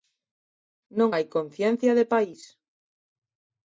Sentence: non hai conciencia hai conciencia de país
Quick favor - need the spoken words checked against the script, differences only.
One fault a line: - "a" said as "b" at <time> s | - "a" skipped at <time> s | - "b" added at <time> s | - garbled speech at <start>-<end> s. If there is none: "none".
- "hai conciencia" skipped at 1.9 s